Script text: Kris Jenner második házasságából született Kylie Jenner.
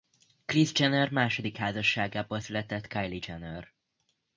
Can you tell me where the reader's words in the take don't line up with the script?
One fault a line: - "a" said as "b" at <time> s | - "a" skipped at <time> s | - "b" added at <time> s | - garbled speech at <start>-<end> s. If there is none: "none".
none